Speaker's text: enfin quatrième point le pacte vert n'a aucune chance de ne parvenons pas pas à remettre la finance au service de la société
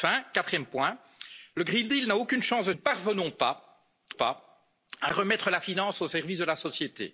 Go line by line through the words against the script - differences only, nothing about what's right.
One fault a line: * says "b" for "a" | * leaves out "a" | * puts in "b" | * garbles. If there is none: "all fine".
all fine